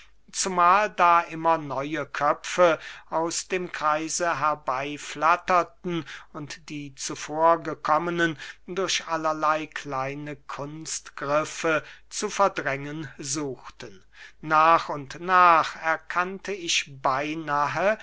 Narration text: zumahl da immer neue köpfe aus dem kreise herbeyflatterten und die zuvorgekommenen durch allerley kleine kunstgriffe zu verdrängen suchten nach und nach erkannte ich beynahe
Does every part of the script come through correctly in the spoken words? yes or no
yes